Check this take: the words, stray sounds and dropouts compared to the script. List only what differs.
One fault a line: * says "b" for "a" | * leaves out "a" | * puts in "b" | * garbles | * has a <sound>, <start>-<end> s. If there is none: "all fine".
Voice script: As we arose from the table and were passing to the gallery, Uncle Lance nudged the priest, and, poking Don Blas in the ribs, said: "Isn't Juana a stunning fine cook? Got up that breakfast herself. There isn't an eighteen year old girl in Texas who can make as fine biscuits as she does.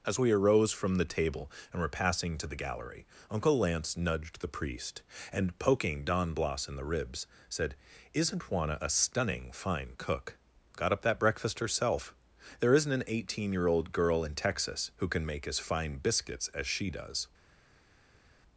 all fine